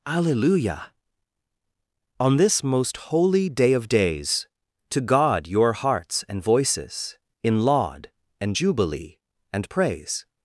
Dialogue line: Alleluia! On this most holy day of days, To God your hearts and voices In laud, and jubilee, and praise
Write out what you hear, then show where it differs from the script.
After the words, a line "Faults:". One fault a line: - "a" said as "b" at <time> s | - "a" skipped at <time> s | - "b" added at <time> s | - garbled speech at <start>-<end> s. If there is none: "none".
Alleluia! On this most holy day of days, To God your hearts and voices In laud, and jubilee, and praise
Faults:
none